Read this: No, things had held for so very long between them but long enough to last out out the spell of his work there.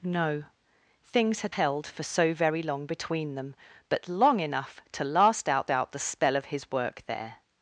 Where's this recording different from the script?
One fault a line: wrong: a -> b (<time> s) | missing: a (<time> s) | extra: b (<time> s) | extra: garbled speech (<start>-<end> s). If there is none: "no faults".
no faults